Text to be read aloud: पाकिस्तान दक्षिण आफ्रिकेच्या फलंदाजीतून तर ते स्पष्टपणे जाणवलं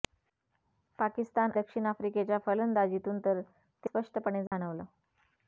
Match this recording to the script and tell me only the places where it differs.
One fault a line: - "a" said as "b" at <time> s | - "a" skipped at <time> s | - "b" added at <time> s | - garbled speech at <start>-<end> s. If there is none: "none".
none